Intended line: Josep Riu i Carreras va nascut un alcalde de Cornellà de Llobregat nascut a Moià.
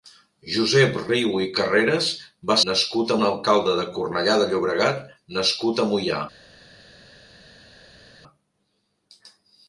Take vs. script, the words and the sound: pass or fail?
pass